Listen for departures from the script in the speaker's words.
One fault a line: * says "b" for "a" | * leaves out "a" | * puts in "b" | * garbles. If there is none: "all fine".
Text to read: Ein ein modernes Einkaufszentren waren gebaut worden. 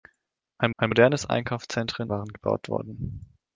all fine